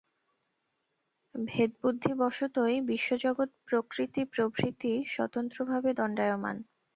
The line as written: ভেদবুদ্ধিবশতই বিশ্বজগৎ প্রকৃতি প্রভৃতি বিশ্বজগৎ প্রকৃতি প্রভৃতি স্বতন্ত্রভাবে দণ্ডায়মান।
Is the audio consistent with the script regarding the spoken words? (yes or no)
no